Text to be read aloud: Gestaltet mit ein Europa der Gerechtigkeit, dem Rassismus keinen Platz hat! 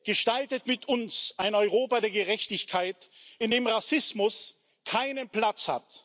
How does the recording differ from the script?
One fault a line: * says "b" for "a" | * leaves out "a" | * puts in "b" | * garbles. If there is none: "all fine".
* puts in "uns"
* puts in "in"